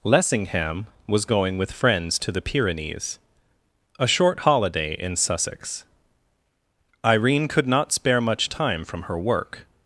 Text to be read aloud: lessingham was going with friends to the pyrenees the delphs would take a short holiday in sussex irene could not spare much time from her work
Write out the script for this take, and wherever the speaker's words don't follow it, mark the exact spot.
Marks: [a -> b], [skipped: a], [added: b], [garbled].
lessingham was going with friends to the pyrenees [skipped: the delphs would take] a short holiday in sussex irene could not spare much time from her work